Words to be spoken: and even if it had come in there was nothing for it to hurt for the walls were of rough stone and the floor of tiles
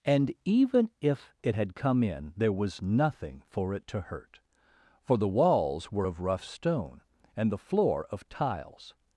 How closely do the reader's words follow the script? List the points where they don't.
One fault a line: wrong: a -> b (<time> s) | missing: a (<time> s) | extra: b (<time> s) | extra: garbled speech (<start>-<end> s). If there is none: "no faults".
no faults